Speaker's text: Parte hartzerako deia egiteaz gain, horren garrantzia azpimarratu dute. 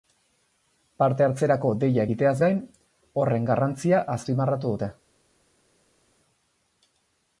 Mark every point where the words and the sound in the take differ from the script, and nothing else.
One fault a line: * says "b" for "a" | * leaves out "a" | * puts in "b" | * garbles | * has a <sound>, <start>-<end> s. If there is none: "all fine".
all fine